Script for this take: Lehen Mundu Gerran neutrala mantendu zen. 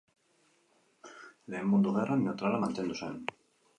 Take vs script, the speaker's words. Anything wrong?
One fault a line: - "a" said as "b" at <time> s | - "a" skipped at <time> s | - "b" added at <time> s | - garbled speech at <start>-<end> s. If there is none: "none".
none